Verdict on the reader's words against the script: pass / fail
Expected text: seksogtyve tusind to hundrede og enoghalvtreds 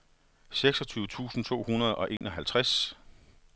pass